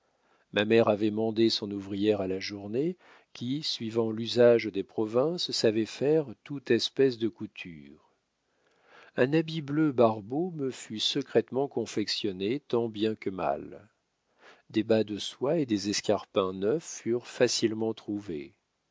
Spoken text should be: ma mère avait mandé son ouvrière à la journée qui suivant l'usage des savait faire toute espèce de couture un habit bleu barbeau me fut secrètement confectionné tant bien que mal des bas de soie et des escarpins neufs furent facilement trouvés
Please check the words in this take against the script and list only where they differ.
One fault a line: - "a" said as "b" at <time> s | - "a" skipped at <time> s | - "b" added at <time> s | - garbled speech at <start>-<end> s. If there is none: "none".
- "provinces" added at 4.8 s